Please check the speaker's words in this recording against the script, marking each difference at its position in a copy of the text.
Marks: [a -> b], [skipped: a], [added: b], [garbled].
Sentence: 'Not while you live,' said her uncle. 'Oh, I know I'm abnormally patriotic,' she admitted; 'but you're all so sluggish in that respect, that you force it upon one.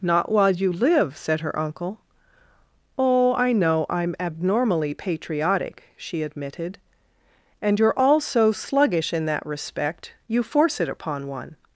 'Not while you live,' said her uncle. 'Oh, I know I'm abnormally patriotic,' she admitted; ['but -> and] you're all so sluggish in that respect, [skipped: that] you force it upon one.